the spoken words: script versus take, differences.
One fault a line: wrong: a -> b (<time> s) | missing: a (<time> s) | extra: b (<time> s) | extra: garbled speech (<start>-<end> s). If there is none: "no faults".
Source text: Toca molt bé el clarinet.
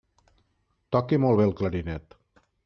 no faults